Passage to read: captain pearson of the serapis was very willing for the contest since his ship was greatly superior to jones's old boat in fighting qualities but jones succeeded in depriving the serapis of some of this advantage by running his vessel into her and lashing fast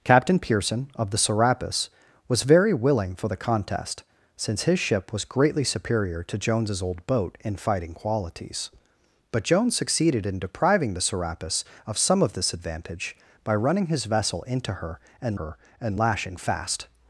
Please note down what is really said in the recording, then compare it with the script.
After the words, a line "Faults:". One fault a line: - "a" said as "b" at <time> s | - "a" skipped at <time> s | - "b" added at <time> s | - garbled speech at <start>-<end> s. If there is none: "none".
captain pearson of the serapis was very willing for the contest since his ship was greatly superior to jones's old boat in fighting qualities but jones succeeded in depriving the serapis of some of this advantage by running his vessel into her and her and lashing fast
Faults:
- "her and" added at 15.4 s